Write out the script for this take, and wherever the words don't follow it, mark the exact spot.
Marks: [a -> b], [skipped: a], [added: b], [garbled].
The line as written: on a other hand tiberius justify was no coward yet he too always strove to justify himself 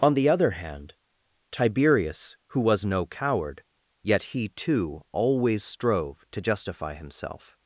on [a -> the] other hand tiberius [justify -> who] was no coward yet he too always strove to justify himself